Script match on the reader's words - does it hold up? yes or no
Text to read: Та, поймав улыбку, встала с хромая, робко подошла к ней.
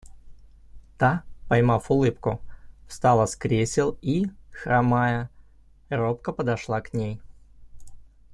no